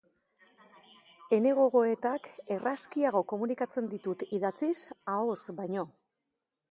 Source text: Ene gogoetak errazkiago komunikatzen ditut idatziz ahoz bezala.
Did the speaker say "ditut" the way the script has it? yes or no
yes